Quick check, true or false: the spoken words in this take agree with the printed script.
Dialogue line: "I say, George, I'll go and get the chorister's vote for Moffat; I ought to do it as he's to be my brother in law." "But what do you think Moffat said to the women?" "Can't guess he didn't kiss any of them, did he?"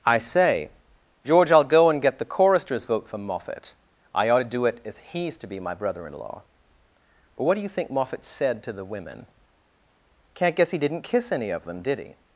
true